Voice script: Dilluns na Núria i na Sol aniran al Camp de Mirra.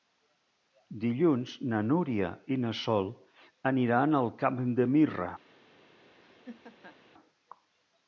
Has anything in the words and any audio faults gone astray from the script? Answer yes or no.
yes